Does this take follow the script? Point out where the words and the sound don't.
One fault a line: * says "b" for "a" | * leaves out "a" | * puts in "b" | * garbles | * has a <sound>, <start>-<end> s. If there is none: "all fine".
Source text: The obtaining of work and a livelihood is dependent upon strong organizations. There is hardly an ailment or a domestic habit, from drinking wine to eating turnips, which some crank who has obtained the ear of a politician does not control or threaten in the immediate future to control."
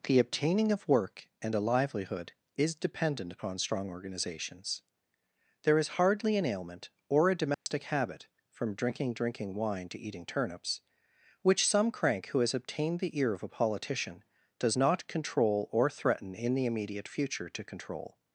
* has a dropout, 7.5-7.7 s
* puts in "drinking"